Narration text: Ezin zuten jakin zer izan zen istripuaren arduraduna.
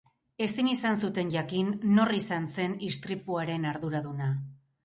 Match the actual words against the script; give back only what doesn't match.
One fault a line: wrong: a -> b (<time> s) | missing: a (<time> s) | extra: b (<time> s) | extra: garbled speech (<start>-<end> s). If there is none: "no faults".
extra: izan (0.7 s)
wrong: zer -> nor (2.0 s)